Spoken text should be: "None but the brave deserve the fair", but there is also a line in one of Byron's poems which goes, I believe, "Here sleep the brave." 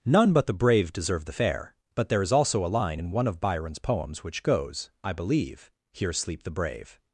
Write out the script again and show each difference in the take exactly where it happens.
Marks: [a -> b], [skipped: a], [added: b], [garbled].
"None but the brave deserve the fair", but there is also a line in one of Byron's poems which goes, I believe, "Here sleep the brave."